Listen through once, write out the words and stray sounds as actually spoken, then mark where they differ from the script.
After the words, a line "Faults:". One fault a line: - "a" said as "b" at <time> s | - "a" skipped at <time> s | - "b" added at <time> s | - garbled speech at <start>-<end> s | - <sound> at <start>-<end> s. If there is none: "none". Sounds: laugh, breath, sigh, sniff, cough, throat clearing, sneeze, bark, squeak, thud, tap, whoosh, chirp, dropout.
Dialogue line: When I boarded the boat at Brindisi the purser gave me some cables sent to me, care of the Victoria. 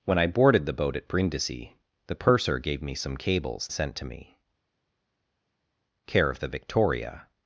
When I boarded the boat at Brindisi the purser gave me some cables sent to me, care of the Victoria.
Faults:
none